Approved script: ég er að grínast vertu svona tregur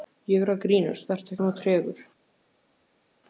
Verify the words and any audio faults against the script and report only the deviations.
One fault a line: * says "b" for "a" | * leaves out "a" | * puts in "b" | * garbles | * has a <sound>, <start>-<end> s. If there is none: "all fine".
all fine